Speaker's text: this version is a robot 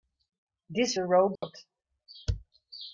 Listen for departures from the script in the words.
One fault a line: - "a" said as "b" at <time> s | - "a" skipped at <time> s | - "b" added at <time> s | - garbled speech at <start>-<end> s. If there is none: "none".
- "version is" skipped at 0.9 s